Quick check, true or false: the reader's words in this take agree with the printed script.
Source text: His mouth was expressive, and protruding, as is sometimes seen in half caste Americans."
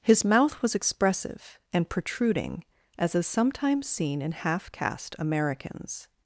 true